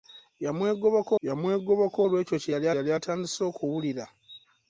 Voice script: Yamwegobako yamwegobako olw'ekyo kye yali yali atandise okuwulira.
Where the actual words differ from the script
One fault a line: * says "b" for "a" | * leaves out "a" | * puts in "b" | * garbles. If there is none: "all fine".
all fine